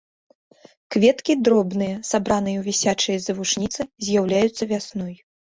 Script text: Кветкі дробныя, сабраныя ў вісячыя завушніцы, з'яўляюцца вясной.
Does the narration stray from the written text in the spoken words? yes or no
no